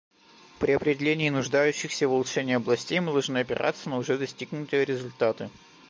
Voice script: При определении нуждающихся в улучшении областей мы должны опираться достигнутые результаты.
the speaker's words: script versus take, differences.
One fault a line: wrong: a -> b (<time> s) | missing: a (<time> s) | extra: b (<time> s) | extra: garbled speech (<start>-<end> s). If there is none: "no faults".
extra: на уже (3.9 s)